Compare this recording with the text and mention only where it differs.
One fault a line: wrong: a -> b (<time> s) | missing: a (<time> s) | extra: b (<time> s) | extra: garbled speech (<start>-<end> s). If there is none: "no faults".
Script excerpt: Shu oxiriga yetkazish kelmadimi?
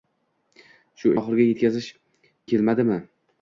no faults